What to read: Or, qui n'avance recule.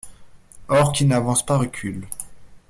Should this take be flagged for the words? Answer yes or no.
yes